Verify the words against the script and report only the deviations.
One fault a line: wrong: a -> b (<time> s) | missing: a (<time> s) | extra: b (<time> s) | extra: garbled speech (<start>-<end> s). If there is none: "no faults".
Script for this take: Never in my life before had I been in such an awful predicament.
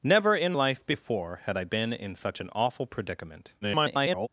missing: my (0.5 s)
extra: garbled speech (3.6-4.3 s)